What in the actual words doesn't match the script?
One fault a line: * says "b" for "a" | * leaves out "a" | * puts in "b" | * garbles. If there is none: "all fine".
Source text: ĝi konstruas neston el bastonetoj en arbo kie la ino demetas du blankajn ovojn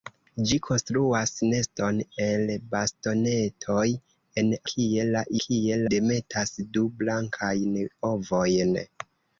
* leaves out "arbo"
* says "kie" for "ino"